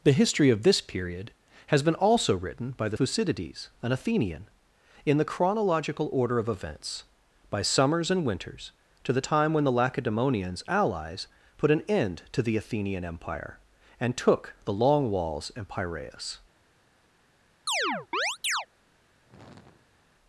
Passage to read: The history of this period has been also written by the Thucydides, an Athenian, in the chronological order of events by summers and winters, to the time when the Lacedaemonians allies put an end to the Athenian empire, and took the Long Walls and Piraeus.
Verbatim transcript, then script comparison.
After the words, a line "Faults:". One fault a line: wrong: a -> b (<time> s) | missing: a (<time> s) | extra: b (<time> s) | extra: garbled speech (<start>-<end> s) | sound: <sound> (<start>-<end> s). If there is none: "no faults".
The history of this period has been also written by the Thucydides, an Athenian, in the chronological order of events by summers and winters, to the time when the Lacedaemonians allies put an end to the Athenian empire, and took the Long Walls and Piraeus.
Faults:
sound: chirp (17.7-18.7 s)
sound: sigh (19.3-20.0 s)